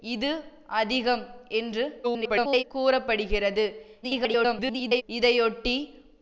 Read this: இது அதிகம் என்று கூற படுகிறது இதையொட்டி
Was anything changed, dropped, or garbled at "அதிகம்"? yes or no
no